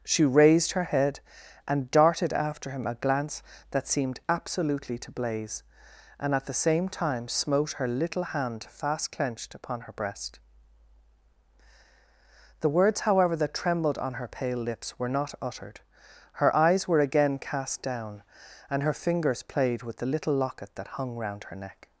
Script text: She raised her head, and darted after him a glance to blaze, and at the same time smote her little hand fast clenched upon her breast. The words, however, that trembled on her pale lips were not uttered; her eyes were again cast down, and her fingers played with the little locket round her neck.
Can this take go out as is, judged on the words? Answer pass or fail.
fail